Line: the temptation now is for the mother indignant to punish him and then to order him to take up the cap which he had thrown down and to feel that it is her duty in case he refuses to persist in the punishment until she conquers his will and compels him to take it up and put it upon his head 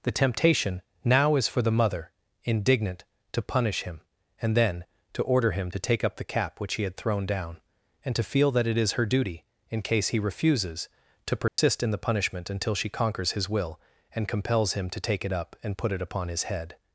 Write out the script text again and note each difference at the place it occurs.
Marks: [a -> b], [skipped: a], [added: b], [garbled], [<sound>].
the temptation now is for the mother indignant to punish him and then to order him to take up the cap which he had thrown down and to feel that it is her duty in case he refuses to persist [dropout] in the punishment until she conquers his will and compels him to take it up and put it upon his head